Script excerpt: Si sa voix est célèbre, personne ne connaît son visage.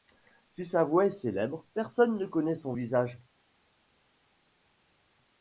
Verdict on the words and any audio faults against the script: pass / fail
pass